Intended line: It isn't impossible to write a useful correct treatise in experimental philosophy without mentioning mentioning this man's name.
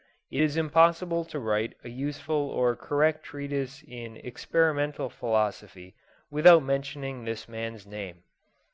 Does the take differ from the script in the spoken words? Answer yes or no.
yes